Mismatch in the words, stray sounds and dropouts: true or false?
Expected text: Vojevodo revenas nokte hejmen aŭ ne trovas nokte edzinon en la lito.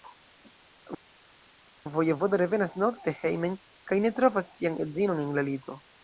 true